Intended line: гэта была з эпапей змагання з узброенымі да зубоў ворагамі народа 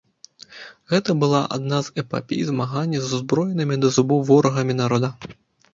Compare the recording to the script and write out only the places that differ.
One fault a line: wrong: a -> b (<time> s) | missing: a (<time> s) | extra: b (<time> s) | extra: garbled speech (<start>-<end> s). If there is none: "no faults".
extra: адна (1.6 s)